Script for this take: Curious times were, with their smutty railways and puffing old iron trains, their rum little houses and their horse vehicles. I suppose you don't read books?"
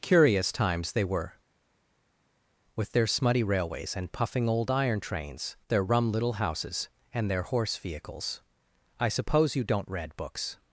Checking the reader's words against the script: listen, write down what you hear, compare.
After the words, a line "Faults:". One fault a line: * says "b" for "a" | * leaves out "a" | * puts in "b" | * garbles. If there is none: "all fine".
Curious times they were, with their smutty railways and puffing old iron trains, their rum little houses and their horse vehicles. I suppose you don't read books?"
Faults:
* puts in "they"